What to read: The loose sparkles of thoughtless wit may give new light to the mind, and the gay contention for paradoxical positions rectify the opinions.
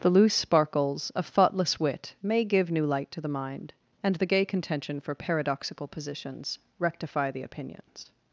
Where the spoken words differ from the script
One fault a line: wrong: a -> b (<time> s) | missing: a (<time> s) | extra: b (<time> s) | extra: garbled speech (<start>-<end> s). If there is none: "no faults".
no faults